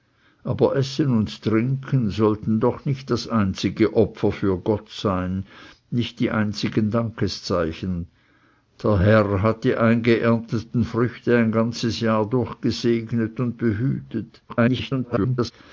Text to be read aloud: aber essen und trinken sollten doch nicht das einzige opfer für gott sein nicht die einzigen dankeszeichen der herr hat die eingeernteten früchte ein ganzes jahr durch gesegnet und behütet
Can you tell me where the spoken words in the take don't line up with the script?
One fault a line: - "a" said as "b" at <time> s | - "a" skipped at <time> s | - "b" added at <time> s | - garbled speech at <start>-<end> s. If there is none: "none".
- garbled speech at 14.5-15.5 s